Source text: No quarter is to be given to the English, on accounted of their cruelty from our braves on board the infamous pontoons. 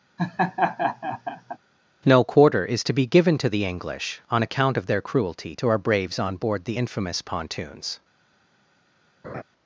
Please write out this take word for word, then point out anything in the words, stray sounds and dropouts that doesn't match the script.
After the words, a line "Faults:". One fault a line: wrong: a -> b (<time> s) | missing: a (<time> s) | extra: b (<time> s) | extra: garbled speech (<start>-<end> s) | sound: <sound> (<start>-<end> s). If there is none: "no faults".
No quarter is to be given to the English, on account of their cruelty to our braves on board the infamous pontoons.
Faults:
sound: laugh (0.2-1.6 s)
wrong: accounted -> account (4.4 s)
wrong: from -> to (5.5 s)
sound: laugh (9.2-9.4 s)